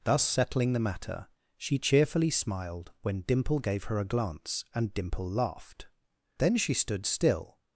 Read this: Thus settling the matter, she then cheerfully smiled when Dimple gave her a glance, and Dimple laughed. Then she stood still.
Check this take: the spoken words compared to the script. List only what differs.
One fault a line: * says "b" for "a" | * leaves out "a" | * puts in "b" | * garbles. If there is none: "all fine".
* leaves out "then"